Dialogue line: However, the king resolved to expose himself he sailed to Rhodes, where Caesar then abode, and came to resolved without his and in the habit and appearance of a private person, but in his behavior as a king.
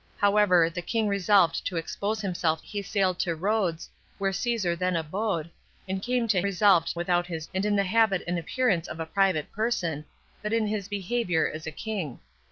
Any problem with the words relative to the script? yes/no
no